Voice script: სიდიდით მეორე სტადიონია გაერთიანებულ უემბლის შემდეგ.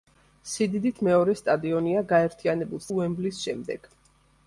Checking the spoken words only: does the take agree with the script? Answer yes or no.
yes